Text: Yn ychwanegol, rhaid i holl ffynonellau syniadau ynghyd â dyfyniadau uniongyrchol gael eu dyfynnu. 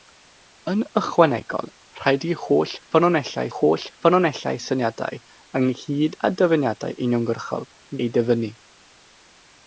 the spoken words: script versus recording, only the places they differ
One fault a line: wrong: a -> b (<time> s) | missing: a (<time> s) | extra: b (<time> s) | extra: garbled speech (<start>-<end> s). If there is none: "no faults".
extra: holl ffynonellau (3.6 s)
missing: gael (7.7 s)